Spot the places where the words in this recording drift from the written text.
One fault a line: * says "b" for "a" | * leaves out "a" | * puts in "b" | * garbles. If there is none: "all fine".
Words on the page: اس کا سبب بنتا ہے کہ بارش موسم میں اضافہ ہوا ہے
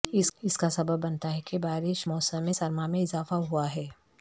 * puts in "سرما"